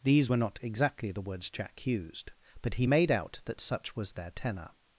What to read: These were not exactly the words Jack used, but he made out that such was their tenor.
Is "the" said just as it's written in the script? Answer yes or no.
yes